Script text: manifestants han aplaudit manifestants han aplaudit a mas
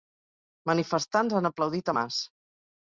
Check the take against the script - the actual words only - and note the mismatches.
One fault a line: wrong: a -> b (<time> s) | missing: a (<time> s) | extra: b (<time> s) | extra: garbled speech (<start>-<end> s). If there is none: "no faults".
missing: manifestants han aplaudit (1.9 s)